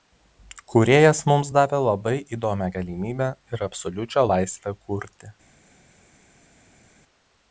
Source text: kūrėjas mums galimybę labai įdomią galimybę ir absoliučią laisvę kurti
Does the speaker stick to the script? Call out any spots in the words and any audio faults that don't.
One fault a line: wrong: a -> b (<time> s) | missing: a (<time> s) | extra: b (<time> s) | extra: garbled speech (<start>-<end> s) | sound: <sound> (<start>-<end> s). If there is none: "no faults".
wrong: galimybę -> davė (1.6 s)